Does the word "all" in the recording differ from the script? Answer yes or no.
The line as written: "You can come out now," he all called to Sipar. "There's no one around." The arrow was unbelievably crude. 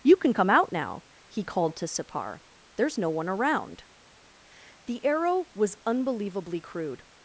yes